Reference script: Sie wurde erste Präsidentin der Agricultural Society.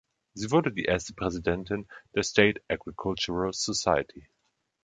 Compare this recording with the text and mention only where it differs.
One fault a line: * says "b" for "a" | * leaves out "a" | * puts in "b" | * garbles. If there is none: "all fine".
* puts in "die"
* puts in "State"